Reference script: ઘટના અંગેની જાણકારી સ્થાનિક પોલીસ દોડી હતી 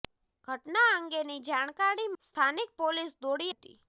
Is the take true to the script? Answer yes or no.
yes